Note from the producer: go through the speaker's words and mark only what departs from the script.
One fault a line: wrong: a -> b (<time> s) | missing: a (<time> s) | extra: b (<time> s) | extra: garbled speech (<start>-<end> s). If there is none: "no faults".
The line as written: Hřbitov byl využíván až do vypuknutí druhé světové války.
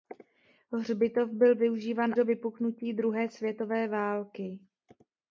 missing: až (2.1 s)